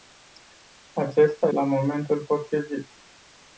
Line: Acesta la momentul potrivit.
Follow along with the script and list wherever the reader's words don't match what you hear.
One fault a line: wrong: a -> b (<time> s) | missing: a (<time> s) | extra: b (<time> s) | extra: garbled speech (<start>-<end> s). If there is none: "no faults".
no faults